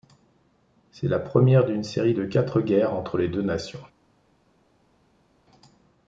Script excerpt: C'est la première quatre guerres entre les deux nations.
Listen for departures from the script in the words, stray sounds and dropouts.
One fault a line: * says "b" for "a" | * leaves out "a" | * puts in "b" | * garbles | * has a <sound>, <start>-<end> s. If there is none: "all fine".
* puts in "d'une série de"